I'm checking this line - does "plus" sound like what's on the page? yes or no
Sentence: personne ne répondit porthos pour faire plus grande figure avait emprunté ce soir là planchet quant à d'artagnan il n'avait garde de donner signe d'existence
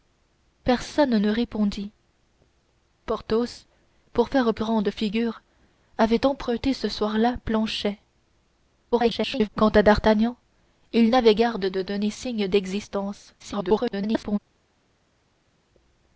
no